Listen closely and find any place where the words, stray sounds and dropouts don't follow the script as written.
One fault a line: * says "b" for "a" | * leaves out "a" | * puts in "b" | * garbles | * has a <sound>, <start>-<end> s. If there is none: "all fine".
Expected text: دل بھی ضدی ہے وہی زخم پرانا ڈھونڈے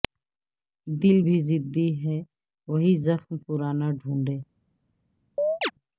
* has a chirp, 5.4-5.7 s